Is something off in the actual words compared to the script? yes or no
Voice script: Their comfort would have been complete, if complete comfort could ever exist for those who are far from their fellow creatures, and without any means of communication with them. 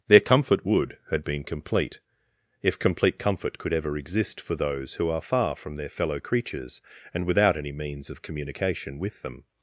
yes